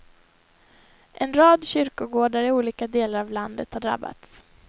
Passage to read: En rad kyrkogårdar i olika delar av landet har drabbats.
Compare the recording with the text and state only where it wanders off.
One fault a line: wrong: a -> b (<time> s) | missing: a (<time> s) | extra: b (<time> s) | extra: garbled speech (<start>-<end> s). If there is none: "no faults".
no faults